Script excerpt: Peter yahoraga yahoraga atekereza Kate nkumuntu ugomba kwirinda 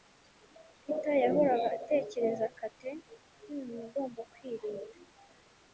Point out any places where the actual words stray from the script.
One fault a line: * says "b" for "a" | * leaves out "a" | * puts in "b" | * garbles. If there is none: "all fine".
* leaves out "yahoraga"